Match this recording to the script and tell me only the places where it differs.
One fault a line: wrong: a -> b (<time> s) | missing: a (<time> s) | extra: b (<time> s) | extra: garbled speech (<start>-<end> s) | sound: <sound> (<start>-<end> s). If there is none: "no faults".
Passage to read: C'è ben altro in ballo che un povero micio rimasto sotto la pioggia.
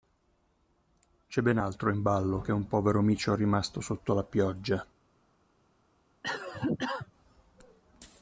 sound: cough (6.2-7.1 s)